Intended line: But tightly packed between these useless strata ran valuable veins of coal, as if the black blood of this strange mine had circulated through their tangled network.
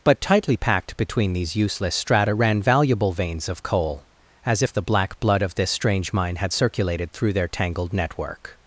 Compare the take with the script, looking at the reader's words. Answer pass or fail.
pass